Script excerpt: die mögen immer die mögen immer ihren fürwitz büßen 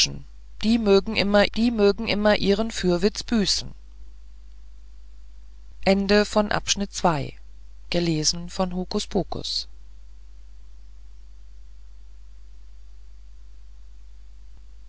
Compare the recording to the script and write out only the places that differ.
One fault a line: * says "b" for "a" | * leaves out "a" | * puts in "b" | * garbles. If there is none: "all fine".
all fine